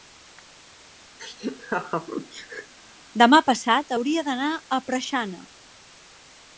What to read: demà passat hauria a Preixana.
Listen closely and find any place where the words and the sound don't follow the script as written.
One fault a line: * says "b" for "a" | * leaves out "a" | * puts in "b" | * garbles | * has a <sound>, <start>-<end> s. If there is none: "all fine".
* has a laugh, 1.2-2.7 s
* puts in "d'anar"